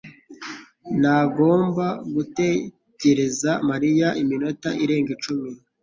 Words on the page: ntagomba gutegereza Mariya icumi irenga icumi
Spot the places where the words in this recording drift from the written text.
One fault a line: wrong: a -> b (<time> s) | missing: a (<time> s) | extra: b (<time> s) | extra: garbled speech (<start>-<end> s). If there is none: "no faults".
wrong: icumi -> iminota (4.2 s)